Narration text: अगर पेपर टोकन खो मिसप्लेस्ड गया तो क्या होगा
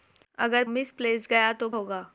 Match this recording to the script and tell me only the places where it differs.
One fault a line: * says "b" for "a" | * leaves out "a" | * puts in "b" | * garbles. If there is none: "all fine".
* leaves out "पेपर टोकन खो"
* leaves out "क्या"